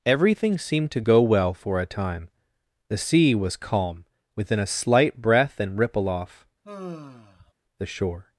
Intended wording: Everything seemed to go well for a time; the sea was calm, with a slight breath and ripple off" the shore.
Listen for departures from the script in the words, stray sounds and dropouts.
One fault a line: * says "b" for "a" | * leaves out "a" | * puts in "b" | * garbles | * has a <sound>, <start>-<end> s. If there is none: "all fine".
* says "within" for "with"
* has a sigh, 6.6-7.5 s